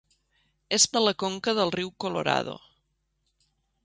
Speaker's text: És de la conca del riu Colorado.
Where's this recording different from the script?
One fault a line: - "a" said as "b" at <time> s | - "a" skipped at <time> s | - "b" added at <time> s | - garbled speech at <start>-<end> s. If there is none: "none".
none